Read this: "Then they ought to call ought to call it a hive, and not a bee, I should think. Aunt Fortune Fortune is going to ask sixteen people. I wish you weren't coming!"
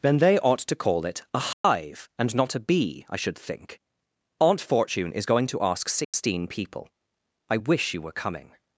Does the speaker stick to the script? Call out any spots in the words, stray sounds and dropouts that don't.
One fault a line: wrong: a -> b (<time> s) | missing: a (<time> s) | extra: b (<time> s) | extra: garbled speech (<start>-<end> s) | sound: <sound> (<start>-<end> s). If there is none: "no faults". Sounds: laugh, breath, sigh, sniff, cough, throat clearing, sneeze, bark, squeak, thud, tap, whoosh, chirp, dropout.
missing: ought to call (1.1 s)
sound: dropout (1.5-1.6 s)
missing: Fortune (5.1 s)
sound: dropout (6.0-6.1 s)
wrong: weren't -> were (8.0 s)